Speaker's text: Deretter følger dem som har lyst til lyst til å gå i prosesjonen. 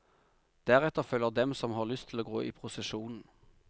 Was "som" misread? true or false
false